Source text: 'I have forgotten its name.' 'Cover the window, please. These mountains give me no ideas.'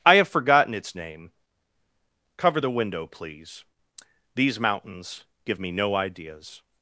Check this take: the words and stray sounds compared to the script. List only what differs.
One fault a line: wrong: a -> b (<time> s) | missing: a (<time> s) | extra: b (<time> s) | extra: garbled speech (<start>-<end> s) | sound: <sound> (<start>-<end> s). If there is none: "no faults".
no faults